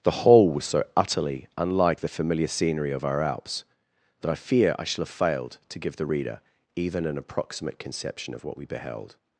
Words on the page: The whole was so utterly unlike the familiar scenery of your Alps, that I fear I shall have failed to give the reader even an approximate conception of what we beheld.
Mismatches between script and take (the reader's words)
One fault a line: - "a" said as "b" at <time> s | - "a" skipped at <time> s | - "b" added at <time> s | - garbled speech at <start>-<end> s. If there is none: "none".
- "your" said as "our" at 3.0 s